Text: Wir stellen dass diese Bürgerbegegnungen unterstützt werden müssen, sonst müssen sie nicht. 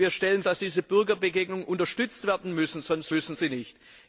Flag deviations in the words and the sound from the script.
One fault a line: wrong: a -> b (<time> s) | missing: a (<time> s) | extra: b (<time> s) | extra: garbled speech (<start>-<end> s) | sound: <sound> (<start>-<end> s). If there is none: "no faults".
no faults